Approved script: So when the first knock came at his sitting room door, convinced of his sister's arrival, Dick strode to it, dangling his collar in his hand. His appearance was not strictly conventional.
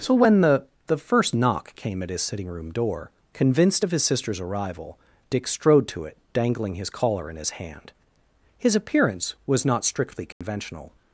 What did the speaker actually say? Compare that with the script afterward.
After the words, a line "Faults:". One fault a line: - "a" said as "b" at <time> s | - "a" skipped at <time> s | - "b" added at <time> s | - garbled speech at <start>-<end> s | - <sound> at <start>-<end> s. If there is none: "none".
So when the the first knock came at his sitting room door, convinced of his sister's arrival, Dick strode to it, dangling his collar in his hand. His appearance was not strictly conventional.
Faults:
- "the" added at 0.9 s
- dropout at 10.3-10.4 s